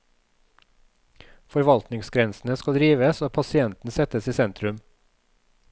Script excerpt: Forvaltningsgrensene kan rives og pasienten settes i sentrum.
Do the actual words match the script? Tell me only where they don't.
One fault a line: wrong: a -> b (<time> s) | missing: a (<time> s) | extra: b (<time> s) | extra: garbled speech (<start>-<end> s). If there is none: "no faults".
wrong: kan -> skal (2.6 s)